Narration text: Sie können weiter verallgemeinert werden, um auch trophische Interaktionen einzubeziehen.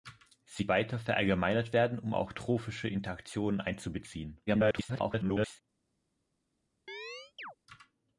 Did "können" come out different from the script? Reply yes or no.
yes